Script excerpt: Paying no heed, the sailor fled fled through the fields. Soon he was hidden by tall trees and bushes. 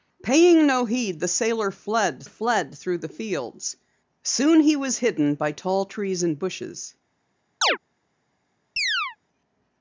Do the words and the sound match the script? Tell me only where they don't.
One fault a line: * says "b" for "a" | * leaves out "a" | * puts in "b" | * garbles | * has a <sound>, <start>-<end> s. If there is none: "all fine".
* has a chirp, 7.6-7.8 s
* has a chirp, 8.8-9.2 s